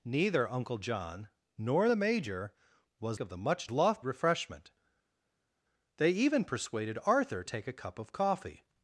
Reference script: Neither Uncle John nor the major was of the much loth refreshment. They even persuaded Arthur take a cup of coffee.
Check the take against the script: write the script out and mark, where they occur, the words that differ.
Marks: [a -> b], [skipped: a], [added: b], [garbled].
Neither Uncle John nor the major was of the much loth refreshment. They even persuaded Arthur take a cup of coffee.